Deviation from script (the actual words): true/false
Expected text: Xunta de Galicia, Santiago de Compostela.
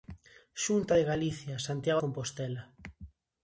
true